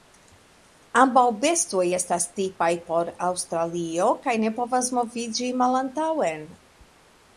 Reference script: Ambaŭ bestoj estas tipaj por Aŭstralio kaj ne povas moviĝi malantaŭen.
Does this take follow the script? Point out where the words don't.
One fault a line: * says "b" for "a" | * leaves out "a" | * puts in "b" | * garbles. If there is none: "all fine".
all fine